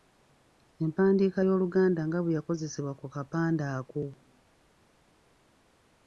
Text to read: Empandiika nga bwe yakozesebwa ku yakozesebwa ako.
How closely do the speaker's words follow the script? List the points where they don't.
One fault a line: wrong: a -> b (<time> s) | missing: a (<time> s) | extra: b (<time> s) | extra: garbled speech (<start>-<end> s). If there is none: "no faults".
extra: y'Oluganda (1.5 s)
wrong: yakozesebwa -> kapande (3.1 s)